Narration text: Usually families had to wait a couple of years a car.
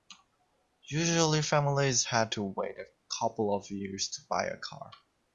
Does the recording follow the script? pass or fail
fail